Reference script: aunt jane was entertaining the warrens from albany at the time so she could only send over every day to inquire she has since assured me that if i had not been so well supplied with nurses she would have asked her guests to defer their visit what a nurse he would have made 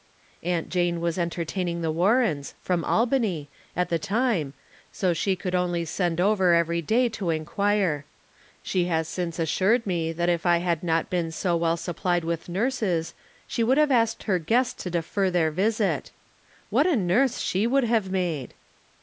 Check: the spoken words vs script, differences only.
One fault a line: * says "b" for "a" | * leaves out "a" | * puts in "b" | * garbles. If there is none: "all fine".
* says "she" for "he"